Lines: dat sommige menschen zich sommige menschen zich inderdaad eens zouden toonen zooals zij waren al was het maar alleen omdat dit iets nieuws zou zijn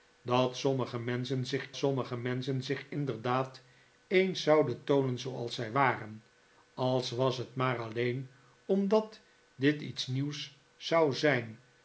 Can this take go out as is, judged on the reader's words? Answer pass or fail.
pass